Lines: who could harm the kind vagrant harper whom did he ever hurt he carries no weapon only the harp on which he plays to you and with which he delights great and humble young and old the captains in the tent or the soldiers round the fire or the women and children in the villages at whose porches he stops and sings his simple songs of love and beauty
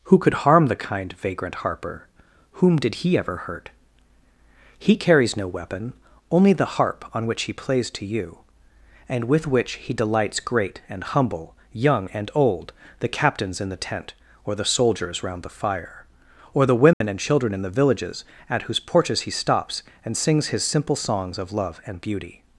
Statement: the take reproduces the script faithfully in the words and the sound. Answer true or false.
false